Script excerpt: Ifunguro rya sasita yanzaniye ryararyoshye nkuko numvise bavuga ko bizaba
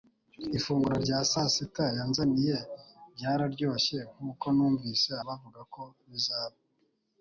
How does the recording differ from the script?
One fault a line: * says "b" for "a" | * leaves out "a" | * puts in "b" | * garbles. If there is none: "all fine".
all fine